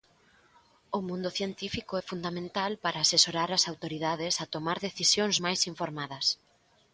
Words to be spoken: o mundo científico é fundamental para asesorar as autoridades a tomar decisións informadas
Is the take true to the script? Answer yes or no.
no